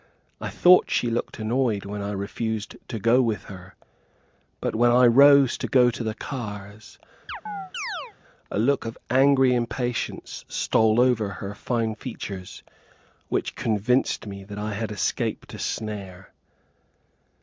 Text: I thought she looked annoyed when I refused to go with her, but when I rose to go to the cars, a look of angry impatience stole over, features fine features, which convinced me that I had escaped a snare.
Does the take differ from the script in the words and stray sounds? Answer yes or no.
yes